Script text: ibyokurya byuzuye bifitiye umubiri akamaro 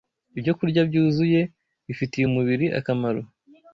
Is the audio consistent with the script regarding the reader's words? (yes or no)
yes